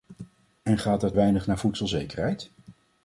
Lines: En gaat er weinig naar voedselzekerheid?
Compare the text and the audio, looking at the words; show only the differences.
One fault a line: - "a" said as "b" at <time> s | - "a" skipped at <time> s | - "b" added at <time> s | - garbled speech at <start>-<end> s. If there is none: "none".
none